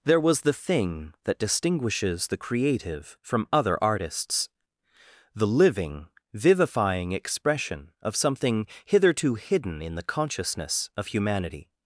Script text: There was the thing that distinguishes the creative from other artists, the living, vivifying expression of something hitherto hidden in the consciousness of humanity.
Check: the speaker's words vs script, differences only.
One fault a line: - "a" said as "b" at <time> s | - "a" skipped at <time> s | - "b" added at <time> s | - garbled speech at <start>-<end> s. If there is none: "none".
none